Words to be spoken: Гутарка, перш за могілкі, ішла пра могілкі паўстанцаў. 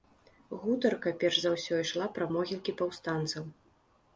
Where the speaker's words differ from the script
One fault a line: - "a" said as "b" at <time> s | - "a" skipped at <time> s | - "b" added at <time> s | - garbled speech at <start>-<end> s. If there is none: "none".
- "могілкі" said as "ўсё" at 1.6 s